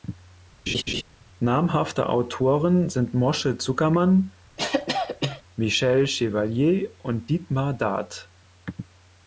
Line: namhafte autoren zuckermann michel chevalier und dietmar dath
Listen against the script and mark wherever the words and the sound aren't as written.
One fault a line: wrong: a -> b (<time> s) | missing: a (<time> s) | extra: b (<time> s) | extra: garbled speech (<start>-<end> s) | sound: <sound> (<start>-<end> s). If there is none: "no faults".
sound: laugh (0.7-1.0 s)
extra: sind moshe (2.9 s)
sound: cough (4.6-5.4 s)